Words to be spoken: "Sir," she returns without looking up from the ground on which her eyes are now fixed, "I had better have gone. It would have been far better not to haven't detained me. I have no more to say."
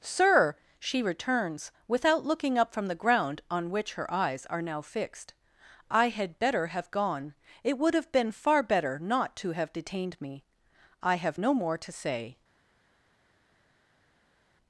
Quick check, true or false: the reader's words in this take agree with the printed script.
false